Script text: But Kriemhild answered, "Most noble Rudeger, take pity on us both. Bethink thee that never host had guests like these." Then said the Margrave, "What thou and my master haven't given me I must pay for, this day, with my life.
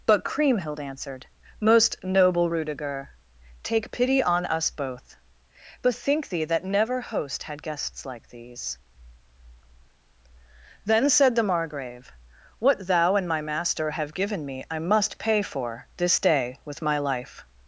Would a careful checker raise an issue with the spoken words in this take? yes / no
yes